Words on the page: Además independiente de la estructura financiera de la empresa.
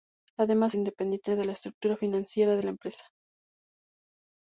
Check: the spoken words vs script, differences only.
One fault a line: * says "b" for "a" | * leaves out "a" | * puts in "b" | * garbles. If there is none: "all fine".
all fine